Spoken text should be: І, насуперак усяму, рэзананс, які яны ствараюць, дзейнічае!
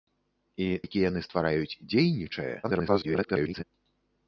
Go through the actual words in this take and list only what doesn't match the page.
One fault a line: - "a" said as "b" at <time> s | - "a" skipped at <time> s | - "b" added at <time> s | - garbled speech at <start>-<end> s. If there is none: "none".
- "насуперак усяму рэзананс" skipped at 0.7 s
- garbled speech at 2.6-3.6 s